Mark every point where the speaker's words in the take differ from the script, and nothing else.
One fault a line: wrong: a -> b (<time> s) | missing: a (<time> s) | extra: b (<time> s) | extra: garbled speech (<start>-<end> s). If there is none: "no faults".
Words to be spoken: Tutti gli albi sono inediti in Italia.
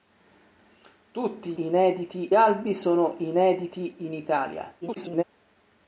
wrong: gli -> inediti (1.6 s)
extra: garbled speech (4.8-5.2 s)